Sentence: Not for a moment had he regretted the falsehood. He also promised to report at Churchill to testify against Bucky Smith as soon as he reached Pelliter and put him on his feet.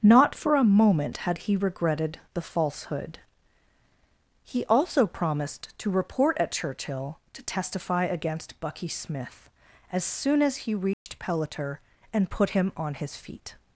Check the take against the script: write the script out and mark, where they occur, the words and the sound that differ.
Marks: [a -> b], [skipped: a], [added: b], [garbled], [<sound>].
Not for a moment had he regretted the falsehood. He also promised to report at Churchill to testify against Bucky Smith as soon as he reached [dropout] Pelliter and put him on his feet.